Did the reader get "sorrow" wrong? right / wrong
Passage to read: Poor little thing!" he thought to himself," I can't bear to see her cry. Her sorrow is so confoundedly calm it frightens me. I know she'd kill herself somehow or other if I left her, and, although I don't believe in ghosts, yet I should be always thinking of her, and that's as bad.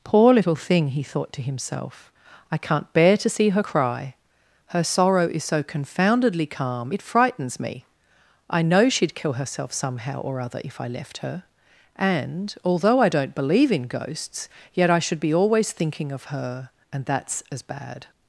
right